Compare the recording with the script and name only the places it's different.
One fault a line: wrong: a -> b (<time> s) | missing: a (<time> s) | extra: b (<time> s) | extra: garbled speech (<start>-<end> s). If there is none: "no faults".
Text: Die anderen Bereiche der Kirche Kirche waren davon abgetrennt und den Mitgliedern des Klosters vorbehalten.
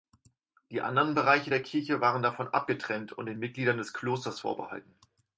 missing: Kirche (2.0 s)